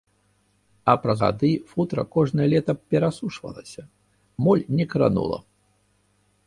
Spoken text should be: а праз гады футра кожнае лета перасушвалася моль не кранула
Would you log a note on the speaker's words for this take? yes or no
no